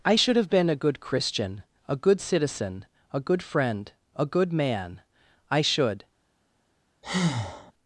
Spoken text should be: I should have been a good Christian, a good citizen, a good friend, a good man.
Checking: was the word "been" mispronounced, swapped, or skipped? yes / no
no